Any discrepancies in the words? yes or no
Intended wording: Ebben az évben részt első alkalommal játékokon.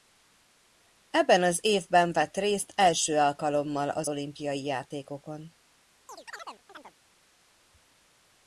yes